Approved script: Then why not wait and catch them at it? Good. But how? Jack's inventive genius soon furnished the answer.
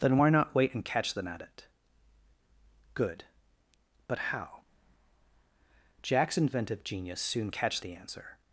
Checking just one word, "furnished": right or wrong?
wrong